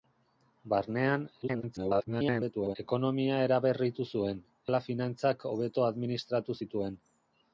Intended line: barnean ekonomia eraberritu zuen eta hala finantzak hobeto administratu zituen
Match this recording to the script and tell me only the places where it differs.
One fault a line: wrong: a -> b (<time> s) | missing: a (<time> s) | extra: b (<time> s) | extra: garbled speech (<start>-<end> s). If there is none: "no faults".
extra: garbled speech (1.4-2.8 s)
missing: eta (4.5 s)